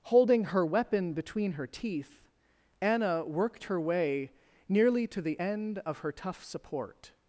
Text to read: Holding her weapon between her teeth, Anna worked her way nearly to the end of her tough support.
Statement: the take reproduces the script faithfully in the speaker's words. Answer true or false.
true